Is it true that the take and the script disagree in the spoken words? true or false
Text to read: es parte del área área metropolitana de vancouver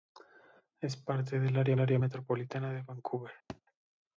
false